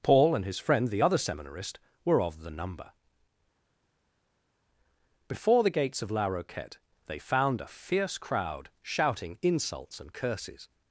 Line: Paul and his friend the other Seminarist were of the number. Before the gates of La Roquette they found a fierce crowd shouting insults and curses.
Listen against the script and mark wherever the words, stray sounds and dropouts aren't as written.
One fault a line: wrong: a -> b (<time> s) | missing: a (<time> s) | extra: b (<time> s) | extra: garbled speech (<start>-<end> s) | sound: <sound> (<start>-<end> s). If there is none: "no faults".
no faults